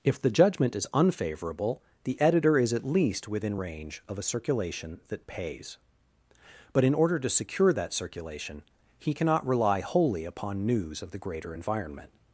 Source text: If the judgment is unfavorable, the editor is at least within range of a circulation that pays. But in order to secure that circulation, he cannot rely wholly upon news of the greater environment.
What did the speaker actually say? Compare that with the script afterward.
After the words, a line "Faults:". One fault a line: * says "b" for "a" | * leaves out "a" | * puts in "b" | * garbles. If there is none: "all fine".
If the judgment is unfavorable, the editor is at least within range of a circulation that pays. But in order to secure that circulation, he cannot rely wholly upon news of the greater environment.
Faults:
all fine